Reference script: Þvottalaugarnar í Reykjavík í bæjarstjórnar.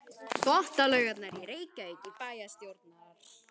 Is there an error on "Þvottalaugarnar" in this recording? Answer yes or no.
no